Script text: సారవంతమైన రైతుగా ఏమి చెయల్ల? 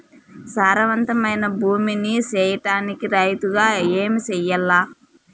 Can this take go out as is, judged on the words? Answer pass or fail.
fail